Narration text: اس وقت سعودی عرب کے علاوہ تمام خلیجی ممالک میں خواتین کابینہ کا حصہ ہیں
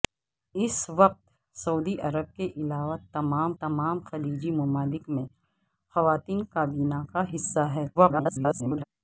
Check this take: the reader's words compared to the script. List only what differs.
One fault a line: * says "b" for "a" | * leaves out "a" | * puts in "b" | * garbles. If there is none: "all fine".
* puts in "تمام"
* garbles